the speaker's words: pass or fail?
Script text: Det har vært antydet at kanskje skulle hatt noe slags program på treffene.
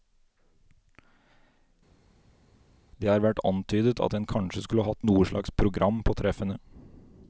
fail